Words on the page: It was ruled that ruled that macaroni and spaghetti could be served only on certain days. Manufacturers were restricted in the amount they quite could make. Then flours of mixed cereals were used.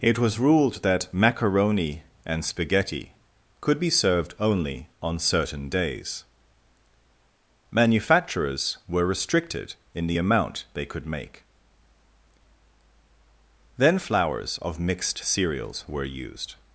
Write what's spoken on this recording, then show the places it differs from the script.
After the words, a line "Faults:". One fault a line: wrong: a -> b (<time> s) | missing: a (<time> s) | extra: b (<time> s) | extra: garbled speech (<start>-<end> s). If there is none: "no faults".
It was ruled that macaroni and spaghetti could be served only on certain days. Manufacturers were restricted in the amount they could make. Then flours of mixed cereals were used.
Faults:
missing: ruled that (1.1 s)
missing: quite (10.9 s)